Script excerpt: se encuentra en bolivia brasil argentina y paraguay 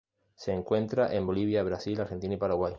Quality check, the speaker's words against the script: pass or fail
pass